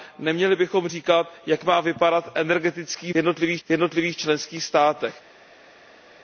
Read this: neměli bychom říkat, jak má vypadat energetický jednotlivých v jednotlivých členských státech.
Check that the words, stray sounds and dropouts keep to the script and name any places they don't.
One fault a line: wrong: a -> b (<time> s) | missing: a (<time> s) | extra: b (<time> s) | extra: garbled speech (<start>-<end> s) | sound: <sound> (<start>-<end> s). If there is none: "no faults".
no faults